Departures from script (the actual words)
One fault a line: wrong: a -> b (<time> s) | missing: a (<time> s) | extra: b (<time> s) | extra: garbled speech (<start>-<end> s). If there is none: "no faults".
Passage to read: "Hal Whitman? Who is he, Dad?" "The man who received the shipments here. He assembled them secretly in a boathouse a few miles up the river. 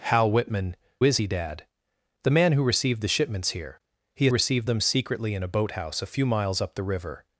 missing: Who (0.8 s)
wrong: assembled -> received (4.3 s)